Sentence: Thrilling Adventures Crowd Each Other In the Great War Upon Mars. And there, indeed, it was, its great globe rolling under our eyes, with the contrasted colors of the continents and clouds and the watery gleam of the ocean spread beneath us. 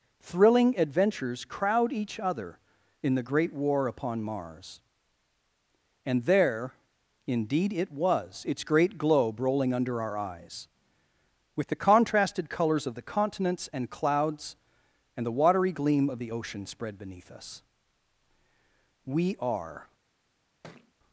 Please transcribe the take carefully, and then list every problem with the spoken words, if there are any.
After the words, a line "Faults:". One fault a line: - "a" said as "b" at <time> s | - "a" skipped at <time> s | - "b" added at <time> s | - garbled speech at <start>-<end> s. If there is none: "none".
Thrilling Adventures Crowd Each Other In the Great War Upon Mars. And there, indeed, it was, its great globe rolling under our eyes, with the contrasted colors of the continents and clouds and the watery gleam of the ocean spread beneath us. "We are
Faults:
- "We are" added at 19.1 s